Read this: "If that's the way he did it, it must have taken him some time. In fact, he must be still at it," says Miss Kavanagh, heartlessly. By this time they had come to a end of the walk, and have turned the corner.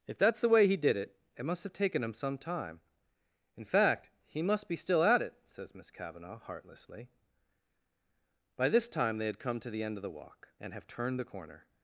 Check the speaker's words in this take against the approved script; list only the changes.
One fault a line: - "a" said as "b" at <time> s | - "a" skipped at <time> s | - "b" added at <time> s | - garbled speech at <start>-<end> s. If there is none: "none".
- "a" said as "the" at 9.7 s